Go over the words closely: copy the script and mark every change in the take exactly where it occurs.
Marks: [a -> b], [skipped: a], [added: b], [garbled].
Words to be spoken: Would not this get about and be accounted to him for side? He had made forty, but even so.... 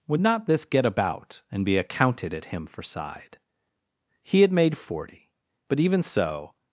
Would not this get about and be accounted [to -> at] him for side? He had made forty, but even so....